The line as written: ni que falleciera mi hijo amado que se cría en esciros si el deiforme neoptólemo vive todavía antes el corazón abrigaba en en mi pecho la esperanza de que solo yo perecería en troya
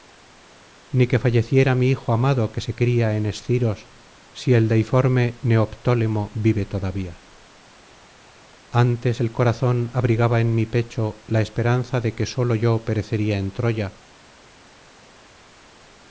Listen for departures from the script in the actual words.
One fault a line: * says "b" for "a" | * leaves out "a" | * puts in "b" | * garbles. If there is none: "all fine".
* leaves out "en"